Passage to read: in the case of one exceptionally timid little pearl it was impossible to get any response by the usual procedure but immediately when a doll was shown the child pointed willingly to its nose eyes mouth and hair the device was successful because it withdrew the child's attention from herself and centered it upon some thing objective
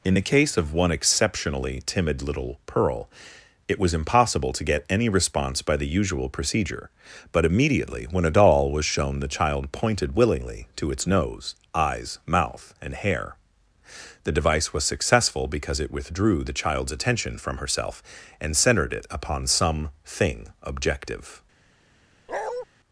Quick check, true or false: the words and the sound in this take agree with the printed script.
false